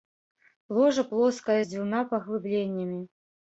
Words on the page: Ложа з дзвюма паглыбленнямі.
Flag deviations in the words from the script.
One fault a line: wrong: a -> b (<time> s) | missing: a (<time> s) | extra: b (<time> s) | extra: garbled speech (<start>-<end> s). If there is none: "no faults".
extra: плоскае (1.1 s)